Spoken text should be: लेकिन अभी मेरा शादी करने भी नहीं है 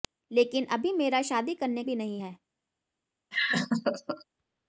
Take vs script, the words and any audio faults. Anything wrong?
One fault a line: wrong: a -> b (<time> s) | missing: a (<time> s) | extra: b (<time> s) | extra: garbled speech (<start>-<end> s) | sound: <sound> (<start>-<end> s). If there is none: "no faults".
sound: laugh (3.3-4.2 s)